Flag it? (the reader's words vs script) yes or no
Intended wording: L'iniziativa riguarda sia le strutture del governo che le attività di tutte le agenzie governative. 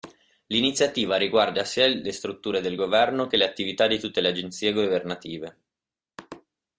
no